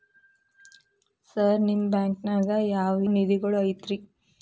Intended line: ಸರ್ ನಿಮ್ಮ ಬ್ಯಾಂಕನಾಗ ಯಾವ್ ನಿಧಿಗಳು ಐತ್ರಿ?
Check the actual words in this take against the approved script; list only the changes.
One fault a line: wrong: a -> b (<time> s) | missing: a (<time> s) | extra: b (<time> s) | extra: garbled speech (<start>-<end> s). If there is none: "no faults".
no faults